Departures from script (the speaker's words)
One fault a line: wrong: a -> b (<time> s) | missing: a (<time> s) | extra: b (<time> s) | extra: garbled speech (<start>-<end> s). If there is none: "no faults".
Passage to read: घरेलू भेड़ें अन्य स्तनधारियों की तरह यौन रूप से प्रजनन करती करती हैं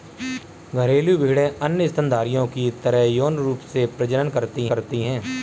no faults